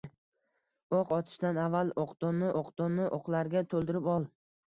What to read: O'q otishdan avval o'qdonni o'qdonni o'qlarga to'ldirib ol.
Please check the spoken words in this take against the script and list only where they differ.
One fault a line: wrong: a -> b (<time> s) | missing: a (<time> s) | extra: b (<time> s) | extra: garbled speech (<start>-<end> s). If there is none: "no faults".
no faults